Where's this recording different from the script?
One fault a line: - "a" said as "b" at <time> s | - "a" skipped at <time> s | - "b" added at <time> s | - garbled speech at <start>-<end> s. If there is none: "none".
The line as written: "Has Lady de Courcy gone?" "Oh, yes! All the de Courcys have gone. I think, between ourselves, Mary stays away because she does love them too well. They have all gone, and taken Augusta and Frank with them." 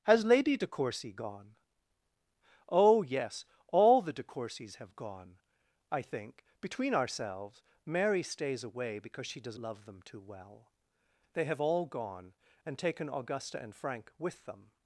none